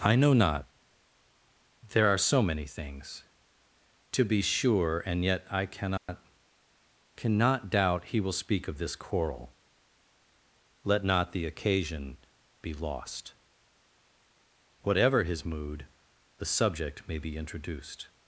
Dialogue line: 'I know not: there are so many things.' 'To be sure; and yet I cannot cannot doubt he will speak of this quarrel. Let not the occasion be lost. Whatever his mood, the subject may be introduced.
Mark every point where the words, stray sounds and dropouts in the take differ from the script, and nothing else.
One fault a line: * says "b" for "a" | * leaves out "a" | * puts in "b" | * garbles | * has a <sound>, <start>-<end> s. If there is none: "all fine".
* has a dropout, 6.0-6.1 s